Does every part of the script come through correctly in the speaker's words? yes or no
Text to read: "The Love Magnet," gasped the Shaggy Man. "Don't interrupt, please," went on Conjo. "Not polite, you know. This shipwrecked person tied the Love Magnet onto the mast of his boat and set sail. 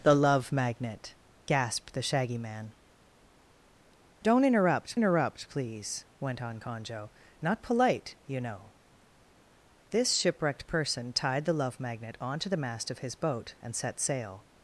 no